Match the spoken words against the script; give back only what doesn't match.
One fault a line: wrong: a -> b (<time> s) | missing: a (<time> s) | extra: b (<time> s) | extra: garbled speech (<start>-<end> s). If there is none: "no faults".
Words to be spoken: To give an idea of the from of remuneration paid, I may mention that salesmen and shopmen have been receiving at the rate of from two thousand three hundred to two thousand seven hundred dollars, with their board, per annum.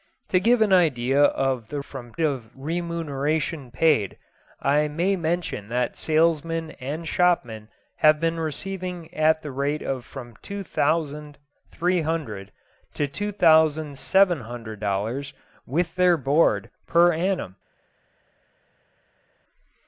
no faults